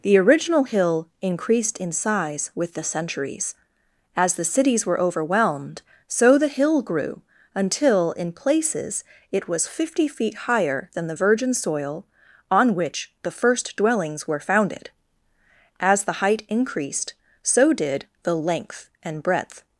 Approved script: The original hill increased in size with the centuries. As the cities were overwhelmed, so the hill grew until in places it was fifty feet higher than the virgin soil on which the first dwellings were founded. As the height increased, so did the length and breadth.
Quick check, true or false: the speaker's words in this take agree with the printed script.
true